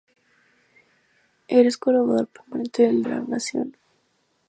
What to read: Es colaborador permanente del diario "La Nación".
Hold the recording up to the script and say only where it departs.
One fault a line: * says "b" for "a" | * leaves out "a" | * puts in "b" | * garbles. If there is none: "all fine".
* leaves out "diario"